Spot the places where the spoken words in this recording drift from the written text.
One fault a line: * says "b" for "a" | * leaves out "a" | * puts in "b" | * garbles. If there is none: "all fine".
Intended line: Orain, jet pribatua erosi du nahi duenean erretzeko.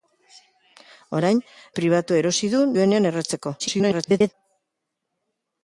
* leaves out "jet"
* leaves out "nahi"
* garbles